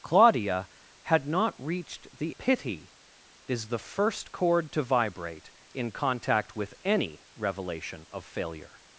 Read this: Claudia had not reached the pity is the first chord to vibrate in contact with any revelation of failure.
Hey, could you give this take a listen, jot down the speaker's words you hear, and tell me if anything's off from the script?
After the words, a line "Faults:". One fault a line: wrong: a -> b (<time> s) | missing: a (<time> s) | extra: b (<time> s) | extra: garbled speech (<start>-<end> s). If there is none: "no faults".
Claudia had not reached the pity is the first chord to vibrate in contact with any revelation of failure.
Faults:
no faults